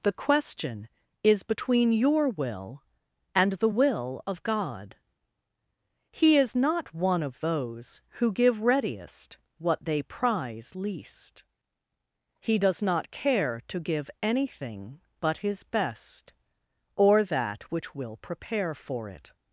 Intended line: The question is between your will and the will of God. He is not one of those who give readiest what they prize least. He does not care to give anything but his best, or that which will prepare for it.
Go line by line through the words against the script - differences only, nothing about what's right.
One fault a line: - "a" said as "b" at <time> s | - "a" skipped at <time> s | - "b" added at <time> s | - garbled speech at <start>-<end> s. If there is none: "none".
none